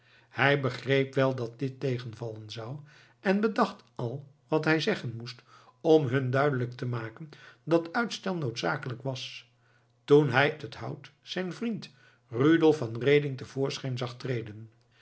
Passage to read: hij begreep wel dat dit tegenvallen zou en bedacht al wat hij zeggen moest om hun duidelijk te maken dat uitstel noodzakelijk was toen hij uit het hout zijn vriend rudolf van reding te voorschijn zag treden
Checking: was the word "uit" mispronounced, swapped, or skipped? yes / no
yes